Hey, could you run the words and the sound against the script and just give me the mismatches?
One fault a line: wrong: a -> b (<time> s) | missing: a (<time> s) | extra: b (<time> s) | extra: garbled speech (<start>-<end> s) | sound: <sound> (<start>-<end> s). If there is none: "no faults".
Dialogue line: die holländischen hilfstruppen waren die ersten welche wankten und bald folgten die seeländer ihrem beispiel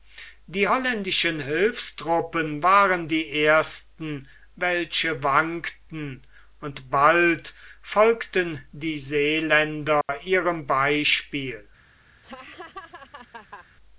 sound: dropout (10.0-10.1 s)
sound: laugh (12.2-13.7 s)